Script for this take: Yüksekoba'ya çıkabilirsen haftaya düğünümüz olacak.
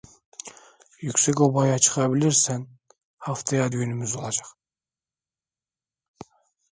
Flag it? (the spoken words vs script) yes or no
no